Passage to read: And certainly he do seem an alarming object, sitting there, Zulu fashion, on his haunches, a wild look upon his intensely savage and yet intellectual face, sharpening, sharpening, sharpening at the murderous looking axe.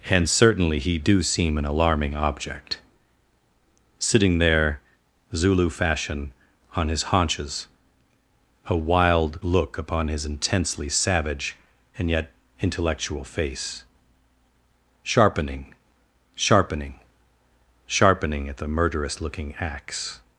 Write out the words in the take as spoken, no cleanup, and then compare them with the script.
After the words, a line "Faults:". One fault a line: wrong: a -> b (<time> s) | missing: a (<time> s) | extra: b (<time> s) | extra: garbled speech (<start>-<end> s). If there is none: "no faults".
And certainly he do seem an alarming object, sitting there, Zulu fashion, on his haunches, a wild look upon his intensely savage and yet intellectual face, sharpening, sharpening, sharpening at the murderous looking axe.
Faults:
no faults